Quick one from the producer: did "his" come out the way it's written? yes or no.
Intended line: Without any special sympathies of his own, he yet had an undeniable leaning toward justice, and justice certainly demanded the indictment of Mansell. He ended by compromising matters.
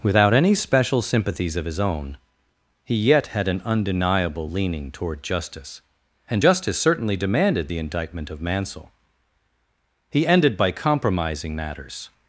yes